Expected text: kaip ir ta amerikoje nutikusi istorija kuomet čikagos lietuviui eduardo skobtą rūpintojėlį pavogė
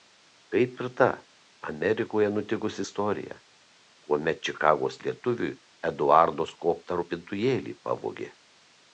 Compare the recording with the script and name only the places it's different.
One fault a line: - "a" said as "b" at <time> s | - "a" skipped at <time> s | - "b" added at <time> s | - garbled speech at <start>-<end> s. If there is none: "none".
none